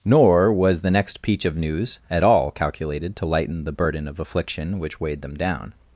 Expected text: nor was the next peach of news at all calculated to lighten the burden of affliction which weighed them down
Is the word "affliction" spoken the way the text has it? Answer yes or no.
yes